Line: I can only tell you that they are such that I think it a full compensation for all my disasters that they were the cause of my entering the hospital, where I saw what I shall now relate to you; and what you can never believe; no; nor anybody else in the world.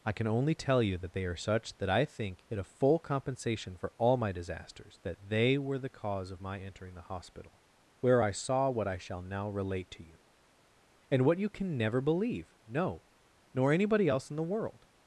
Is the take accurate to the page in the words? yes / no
yes